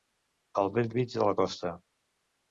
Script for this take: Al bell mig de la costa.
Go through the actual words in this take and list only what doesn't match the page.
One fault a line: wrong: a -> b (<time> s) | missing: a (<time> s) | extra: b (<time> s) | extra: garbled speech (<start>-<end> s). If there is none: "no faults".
no faults